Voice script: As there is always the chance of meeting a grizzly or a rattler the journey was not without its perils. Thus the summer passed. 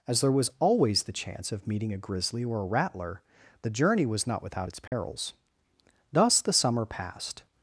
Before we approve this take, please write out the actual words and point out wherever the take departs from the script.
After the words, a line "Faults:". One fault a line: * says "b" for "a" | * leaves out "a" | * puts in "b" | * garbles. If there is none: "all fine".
As there was always the chance of meeting a grizzly or a rattler the journey was not without its perils. Thus the summer passed.
Faults:
* says "was" for "is"